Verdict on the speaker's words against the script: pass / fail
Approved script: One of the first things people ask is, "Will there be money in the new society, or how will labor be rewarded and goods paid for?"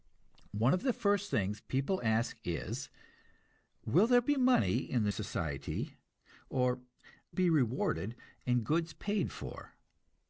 fail